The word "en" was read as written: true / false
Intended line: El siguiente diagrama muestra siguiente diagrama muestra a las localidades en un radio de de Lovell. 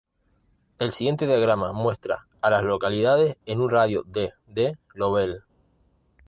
true